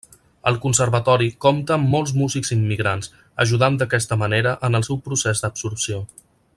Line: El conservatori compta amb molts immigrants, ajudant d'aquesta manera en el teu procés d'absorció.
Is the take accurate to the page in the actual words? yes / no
no